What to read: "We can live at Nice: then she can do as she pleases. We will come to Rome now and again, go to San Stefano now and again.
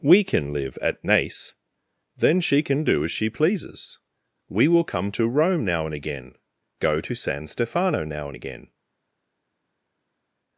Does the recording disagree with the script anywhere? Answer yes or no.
no